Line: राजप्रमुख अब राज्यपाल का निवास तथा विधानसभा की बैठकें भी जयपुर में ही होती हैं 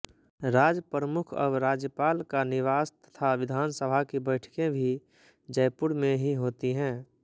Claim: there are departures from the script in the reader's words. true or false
false